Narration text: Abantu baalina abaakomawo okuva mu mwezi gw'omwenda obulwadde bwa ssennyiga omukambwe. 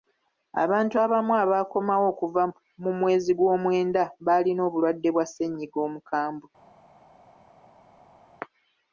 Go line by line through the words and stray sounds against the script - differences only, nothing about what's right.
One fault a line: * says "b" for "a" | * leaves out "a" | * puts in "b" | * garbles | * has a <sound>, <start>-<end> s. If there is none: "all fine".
* says "abamu" for "baalina"
* puts in "baalina"